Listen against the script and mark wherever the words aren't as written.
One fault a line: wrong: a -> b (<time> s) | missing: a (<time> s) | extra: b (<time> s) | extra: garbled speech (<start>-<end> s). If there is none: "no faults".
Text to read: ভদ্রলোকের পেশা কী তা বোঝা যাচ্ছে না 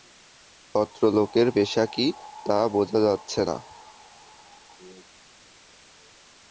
no faults